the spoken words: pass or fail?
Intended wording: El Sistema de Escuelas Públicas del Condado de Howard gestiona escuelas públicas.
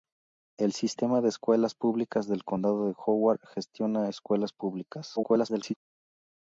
fail